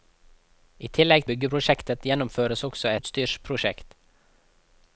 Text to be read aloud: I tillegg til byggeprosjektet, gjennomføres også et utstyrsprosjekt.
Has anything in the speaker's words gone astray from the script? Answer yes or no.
yes